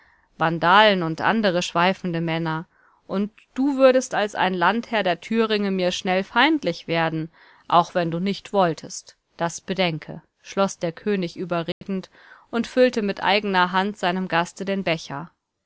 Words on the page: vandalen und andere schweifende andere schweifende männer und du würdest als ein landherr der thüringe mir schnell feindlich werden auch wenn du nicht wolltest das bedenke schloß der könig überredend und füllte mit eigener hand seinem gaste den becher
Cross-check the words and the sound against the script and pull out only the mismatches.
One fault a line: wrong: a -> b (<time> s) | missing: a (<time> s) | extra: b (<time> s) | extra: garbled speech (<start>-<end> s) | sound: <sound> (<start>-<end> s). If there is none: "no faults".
missing: andere schweifende (2.2 s)
sound: dropout (11.7-11.8 s)